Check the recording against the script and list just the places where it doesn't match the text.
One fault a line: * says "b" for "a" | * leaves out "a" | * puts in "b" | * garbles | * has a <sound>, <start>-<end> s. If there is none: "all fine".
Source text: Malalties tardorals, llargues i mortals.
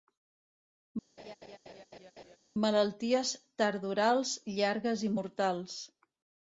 * has a laugh, 1.2-2.4 s